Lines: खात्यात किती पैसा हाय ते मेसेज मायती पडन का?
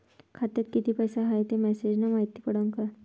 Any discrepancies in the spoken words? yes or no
yes